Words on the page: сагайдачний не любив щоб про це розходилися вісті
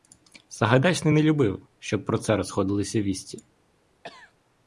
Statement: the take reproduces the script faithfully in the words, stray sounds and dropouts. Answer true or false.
false